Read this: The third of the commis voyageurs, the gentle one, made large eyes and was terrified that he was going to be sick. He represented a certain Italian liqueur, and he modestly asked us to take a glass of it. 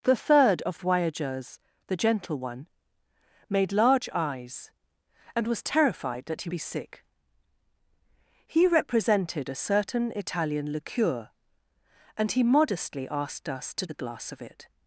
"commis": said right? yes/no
no